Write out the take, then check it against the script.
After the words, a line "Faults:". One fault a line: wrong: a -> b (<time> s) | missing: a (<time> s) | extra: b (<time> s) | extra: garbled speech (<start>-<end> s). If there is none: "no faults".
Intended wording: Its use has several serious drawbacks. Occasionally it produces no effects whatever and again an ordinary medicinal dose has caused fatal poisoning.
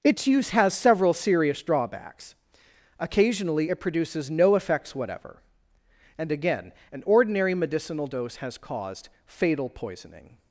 Its use has several serious drawbacks. Occasionally it produces no effects whatever and again an ordinary medicinal dose has caused fatal poisoning.
Faults:
no faults